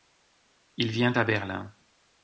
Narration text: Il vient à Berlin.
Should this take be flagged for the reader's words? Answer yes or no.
no